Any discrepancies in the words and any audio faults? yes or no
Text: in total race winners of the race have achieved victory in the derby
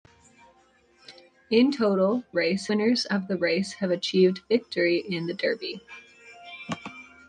no